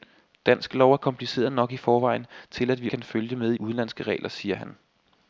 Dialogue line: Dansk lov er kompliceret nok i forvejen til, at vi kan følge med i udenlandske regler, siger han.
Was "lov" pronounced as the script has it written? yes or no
yes